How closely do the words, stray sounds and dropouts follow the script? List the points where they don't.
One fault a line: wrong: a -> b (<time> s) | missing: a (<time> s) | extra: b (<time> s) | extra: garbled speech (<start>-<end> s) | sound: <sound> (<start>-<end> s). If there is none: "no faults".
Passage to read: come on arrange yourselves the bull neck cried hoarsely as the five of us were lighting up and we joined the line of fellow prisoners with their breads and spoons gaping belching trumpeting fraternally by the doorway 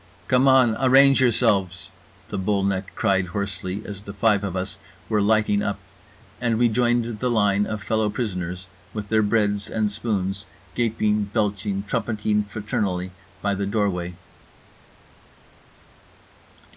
no faults